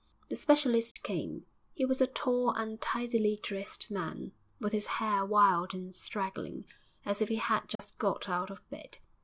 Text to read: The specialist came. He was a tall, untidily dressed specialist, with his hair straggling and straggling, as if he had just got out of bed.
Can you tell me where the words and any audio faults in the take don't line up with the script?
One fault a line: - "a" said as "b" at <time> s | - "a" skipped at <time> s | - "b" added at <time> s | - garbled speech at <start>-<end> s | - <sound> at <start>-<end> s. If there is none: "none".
- dropout at 0.9-1.0 s
- "specialist" said as "man" at 3.9 s
- "straggling" said as "wild" at 5.2 s
- dropout at 7.8-7.8 s